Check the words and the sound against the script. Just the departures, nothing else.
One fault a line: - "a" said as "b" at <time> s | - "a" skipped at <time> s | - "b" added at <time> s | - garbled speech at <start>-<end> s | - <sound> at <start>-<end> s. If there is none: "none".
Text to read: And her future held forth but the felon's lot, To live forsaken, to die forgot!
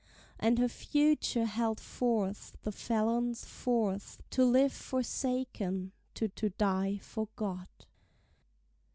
- "but" skipped at 2.6 s
- "lot" said as "forth" at 3.4 s
- "to" added at 6.4 s